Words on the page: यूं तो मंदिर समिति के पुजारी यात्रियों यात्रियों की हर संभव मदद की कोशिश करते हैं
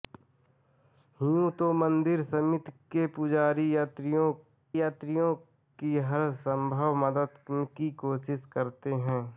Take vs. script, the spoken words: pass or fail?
pass